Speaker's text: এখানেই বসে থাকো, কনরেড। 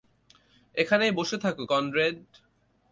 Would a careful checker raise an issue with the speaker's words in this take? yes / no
no